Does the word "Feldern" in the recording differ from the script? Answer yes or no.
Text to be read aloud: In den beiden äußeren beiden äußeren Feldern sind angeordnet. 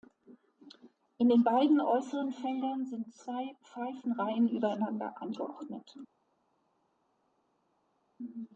yes